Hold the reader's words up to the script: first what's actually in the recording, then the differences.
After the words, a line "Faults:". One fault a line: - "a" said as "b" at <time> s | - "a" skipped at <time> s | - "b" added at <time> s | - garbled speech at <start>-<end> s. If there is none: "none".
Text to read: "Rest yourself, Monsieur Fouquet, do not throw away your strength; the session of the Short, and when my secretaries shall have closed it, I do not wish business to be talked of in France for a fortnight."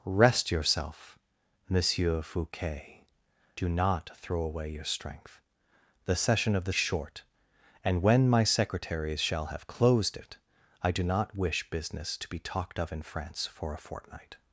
"Rest yourself, Monsieur Fouquet, do not throw away your strength; the session of the Short, and when my secretaries shall have closed it, I do not wish business to be talked of in France for a fortnight."
Faults:
none